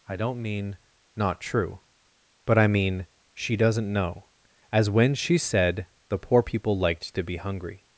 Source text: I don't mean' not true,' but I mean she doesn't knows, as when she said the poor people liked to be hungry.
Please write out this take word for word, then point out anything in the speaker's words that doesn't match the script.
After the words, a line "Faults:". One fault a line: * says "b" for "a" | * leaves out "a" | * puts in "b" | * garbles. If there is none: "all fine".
I don't mean' not true,' but I mean she doesn't know, as when she said the poor people liked to be hungry.
Faults:
* says "know" for "knows"